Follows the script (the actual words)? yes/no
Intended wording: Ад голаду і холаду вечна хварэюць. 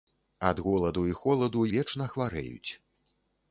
yes